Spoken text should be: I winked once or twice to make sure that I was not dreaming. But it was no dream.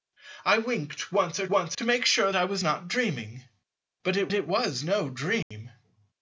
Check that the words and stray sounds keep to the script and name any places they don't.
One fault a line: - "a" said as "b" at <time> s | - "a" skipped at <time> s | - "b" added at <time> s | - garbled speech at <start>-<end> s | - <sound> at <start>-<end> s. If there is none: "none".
- "twice" said as "once" at 1.5 s
- "that" skipped at 2.3 s
- "it" added at 4.3 s
- dropout at 5.4-5.5 s